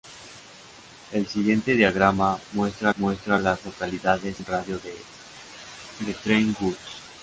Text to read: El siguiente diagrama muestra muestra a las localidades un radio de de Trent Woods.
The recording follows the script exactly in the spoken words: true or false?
true